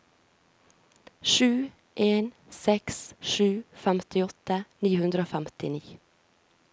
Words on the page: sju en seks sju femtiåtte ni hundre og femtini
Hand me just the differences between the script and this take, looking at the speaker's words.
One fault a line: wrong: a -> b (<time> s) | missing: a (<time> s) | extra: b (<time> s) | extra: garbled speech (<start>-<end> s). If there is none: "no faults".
no faults